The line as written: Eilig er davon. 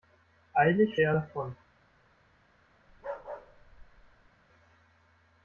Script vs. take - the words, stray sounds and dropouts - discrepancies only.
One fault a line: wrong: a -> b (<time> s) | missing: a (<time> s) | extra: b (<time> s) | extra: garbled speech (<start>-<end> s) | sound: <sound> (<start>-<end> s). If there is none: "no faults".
sound: bark (2.9-4.3 s)